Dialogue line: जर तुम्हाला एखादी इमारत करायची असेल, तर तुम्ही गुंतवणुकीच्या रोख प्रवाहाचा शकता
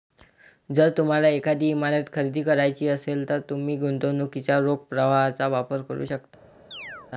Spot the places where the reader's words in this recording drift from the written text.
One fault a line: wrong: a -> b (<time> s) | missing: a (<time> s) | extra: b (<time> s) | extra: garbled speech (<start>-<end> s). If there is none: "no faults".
extra: खरेदी (2.1 s)
extra: वापर करू (5.5 s)